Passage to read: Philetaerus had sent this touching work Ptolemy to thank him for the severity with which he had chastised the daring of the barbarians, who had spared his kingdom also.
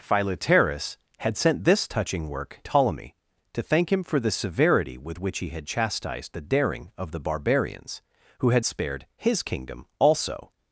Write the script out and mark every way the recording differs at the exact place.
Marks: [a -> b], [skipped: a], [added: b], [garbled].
Philetaerus had sent this touching work Ptolemy to thank him for the severity with which he had chastised the daring of the barbarians, who had spared his kingdom also.